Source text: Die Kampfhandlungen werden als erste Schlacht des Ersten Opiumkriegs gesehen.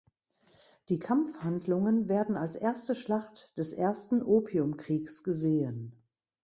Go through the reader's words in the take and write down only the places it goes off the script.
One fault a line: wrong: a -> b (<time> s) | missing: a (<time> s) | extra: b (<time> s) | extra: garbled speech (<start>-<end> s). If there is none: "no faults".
no faults